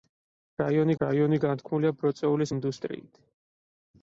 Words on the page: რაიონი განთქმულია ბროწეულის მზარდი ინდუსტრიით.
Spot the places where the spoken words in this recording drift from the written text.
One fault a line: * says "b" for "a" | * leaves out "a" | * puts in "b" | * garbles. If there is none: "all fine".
* puts in "რაიონი"
* leaves out "მზარდი"